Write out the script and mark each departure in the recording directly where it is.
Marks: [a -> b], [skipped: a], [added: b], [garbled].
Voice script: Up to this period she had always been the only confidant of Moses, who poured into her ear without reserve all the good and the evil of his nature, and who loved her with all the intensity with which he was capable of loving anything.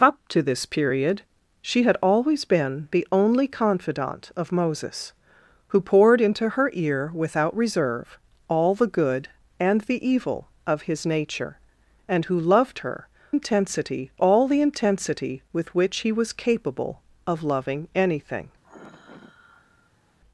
Up to this period she had always been the only confidant of Moses, who poured into her ear without reserve all the good and the evil of his nature, and who loved her [with -> intensity] all the intensity with which he was capable of loving anything.